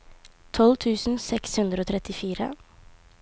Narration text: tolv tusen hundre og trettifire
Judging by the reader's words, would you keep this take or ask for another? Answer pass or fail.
fail